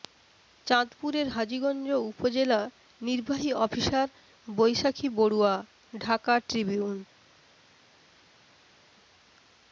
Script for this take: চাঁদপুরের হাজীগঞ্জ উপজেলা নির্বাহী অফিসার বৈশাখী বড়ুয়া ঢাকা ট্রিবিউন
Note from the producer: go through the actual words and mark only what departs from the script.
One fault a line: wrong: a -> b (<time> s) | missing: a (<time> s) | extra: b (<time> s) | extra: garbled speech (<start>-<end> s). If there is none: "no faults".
no faults